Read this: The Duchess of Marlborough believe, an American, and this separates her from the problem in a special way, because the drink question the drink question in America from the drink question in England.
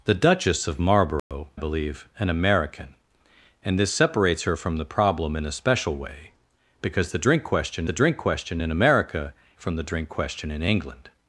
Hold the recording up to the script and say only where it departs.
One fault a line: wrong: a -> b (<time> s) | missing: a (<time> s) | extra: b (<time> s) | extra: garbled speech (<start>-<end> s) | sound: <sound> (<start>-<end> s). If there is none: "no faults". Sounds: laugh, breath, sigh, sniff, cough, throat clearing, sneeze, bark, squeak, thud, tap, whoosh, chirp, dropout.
sound: dropout (1.2-1.3 s)